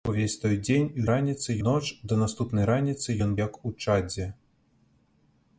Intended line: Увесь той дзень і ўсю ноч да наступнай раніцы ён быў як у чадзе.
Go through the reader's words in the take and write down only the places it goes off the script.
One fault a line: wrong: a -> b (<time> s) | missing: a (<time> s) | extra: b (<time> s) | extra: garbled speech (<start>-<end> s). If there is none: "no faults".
wrong: ўсю -> раніцы (1.1 s)
missing: быў (3.3 s)